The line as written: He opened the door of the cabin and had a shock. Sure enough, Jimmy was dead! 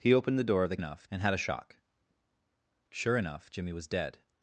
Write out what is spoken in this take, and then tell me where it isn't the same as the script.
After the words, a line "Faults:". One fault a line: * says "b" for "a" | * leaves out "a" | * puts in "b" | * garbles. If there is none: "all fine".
He opened the door of the enough and had a shock. Sure enough, Jimmy was dead!
Faults:
* says "enough" for "cabin"